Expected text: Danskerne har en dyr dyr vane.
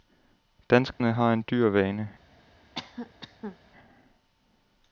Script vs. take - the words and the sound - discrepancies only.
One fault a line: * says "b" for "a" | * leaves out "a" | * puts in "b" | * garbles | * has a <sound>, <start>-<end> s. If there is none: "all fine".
* has a dropout, 0.9-1.0 s
* leaves out "dyr"
* has a cough, 2.7-3.6 s